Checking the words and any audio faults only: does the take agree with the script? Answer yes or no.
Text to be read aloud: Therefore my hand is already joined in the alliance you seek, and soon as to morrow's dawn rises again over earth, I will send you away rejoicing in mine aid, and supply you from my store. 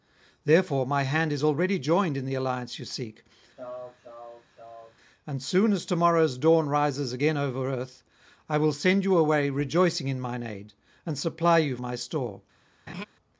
no